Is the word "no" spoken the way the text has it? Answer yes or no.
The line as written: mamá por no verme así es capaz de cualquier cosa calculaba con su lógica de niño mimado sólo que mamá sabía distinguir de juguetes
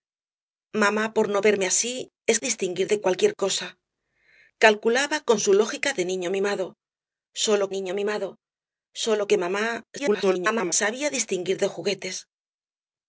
yes